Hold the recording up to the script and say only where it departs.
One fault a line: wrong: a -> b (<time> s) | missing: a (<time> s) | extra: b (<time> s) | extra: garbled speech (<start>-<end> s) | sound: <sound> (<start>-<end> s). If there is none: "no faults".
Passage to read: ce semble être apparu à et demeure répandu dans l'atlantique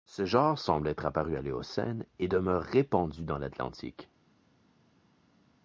extra: genre (0.2 s)
extra: l'éocène (1.4 s)